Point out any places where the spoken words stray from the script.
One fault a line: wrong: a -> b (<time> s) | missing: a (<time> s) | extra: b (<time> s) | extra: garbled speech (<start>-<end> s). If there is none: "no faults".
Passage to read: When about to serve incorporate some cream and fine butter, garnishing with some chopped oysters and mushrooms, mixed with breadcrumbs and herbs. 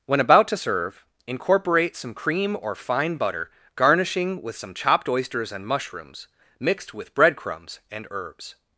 wrong: and -> or (2.6 s)